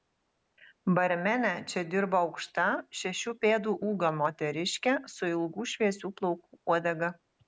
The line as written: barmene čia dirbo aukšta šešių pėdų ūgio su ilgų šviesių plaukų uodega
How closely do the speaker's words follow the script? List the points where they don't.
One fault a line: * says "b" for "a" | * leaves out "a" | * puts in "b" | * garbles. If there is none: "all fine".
* puts in "moteriškė"